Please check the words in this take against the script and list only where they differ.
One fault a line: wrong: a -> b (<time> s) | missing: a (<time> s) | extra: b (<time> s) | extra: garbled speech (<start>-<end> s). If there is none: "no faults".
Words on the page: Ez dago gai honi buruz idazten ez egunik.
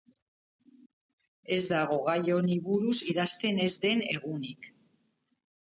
extra: den (3.9 s)